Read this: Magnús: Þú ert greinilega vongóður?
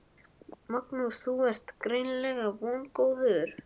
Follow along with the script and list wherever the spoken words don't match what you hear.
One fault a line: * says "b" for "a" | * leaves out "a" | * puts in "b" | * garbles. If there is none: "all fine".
all fine